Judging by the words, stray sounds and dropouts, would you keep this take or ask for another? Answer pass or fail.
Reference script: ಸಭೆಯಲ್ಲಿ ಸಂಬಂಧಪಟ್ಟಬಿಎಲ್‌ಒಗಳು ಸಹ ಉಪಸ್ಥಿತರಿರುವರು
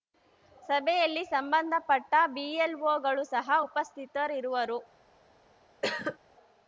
fail